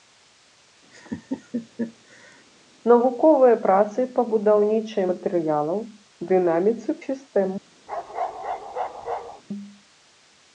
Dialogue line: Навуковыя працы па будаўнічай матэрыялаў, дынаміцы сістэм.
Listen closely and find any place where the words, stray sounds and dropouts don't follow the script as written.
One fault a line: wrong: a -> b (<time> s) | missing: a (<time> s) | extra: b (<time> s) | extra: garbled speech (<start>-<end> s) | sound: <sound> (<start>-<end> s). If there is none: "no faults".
sound: laugh (0.9-2.4 s)
sound: bark (7.9-9.4 s)